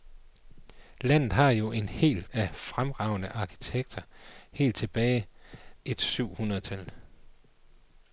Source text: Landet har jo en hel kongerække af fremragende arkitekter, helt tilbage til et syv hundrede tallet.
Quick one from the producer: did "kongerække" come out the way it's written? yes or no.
no